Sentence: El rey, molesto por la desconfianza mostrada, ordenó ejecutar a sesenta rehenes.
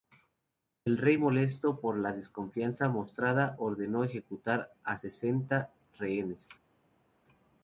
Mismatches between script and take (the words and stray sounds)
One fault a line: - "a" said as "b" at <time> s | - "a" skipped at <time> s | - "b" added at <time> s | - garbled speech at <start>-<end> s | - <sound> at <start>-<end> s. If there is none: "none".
none